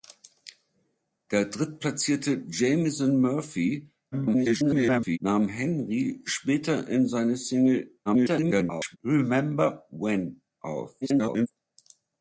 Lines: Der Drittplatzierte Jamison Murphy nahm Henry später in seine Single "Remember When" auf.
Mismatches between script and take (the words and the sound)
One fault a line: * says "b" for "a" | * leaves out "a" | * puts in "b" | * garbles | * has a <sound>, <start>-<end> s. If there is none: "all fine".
* garbles
* garbles
* garbles